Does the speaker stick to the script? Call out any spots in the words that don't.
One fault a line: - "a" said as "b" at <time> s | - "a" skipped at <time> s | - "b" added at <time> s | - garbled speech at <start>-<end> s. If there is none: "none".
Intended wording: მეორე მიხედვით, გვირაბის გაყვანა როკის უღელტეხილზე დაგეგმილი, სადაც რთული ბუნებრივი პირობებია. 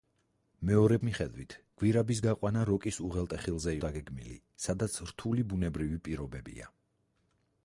none